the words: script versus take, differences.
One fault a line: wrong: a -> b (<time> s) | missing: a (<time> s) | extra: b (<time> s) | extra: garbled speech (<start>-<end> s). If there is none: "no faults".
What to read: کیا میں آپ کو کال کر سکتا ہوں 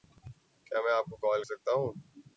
missing: کر (1.4 s)